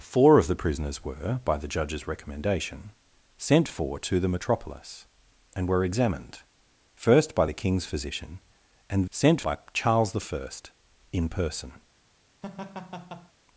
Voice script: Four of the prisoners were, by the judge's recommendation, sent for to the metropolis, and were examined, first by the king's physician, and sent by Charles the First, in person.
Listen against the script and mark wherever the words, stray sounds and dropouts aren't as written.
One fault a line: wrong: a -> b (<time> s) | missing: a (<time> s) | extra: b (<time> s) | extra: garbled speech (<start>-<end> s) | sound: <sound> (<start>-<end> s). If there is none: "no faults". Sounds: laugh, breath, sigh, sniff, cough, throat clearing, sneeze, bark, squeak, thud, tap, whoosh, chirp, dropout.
sound: laugh (12.4-13.3 s)